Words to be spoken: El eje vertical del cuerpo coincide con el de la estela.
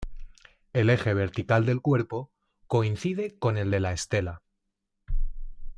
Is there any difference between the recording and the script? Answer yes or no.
no